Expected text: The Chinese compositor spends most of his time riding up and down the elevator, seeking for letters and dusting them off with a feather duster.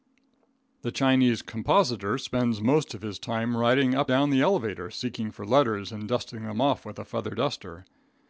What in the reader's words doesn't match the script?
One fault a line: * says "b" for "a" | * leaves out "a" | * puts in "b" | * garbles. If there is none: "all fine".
* leaves out "and"